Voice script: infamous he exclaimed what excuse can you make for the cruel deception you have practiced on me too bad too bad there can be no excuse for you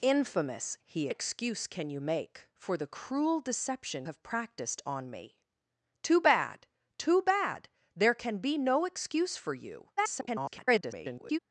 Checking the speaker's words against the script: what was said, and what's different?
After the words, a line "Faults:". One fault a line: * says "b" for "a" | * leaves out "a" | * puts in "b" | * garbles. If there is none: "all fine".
infamous he excuse can you make for the cruel deception have practiced on me too bad too bad there can be no excuse for you [garbled]
Faults:
* leaves out "exclaimed what"
* leaves out "you"
* garbles